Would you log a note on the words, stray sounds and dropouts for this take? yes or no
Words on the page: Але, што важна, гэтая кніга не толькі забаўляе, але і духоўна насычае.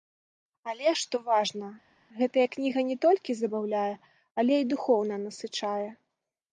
no